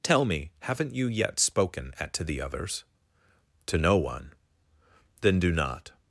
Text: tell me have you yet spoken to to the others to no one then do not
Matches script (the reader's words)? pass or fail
fail